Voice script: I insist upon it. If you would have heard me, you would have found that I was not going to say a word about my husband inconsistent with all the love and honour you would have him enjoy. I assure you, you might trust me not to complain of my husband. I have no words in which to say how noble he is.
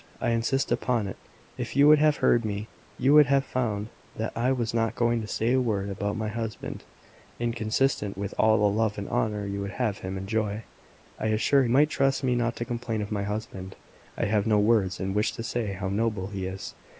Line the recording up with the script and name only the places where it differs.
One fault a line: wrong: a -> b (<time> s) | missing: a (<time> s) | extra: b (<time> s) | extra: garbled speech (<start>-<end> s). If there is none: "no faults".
missing: you you (11.6 s)